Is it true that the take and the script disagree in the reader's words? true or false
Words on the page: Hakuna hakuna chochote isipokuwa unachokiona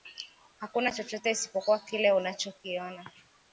true